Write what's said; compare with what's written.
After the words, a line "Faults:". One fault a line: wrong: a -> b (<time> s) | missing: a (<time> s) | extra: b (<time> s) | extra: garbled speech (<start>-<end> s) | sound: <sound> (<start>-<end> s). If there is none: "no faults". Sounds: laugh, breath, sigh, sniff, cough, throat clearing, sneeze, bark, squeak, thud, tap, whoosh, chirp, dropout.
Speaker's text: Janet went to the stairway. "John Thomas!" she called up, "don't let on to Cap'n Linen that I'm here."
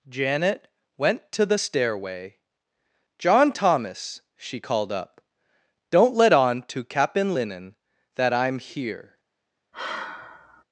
Janet went to the stairway. "John Thomas!" she called up, "don't let on to Cap'n Linen that I'm here."
Faults:
sound: sigh (9.7-10.6 s)